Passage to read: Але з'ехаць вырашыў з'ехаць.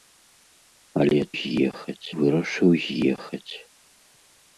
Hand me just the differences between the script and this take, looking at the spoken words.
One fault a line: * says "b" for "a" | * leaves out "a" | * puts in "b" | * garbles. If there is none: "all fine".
all fine